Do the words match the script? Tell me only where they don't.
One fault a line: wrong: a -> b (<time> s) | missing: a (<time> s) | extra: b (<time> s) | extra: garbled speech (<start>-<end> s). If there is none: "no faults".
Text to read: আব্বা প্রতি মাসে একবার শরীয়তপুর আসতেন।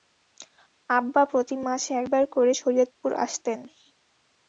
extra: করে (2.4 s)